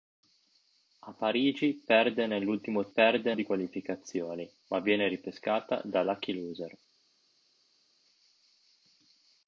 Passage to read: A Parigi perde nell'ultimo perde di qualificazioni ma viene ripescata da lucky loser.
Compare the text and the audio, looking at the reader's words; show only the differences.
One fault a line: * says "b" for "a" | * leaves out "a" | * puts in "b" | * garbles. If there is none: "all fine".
all fine